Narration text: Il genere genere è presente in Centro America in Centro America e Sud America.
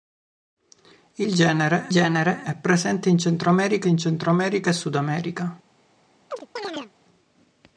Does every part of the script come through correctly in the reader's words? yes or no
yes